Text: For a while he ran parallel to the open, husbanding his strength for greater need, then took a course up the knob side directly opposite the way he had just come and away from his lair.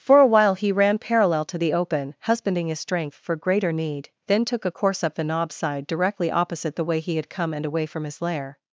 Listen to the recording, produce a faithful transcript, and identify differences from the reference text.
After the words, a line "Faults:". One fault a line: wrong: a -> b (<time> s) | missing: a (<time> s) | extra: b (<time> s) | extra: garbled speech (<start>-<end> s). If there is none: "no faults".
For a while he ran parallel to the open, husbanding his strength for greater need, then took a course up the knob side directly opposite the way he had come and away from his lair.
Faults:
missing: just (7.3 s)